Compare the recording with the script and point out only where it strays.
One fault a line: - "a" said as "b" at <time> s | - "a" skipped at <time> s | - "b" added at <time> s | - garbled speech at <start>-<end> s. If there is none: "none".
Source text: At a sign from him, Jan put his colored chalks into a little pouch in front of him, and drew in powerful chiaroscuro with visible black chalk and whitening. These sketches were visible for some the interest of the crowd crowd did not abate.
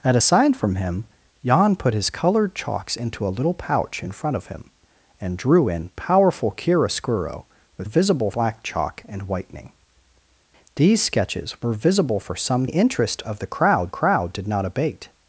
none